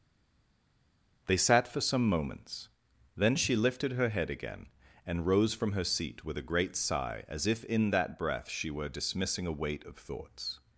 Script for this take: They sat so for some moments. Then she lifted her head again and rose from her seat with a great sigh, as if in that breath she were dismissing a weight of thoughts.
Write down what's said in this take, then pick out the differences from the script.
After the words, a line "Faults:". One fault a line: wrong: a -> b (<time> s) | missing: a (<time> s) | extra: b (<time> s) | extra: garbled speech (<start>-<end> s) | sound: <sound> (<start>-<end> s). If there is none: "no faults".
They sat for some moments. Then she lifted her head again and rose from her seat with a great sigh, as if in that breath she were dismissing a weight of thoughts.
Faults:
missing: so (1.7 s)